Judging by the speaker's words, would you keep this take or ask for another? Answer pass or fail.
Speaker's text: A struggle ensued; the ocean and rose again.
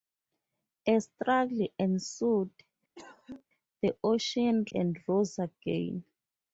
pass